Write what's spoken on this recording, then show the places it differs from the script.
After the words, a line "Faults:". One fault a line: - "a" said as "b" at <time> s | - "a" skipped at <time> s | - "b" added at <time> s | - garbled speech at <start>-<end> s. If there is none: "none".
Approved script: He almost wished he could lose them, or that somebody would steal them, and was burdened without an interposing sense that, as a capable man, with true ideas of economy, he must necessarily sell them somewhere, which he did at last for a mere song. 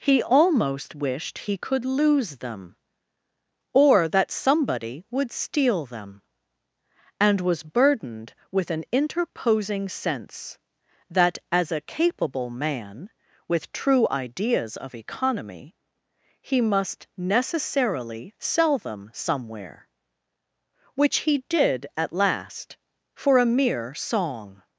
He almost wished he could lose them, or that somebody would steal them, and was burdened with an interposing sense that, as a capable man, with true ideas of economy, he must necessarily sell them somewhere, which he did at last for a mere song.
Faults:
- "without" said as "with" at 8.5 s